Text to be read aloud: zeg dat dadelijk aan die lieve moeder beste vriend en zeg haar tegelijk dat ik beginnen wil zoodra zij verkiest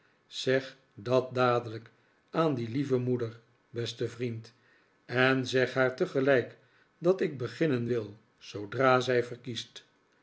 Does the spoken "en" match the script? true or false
true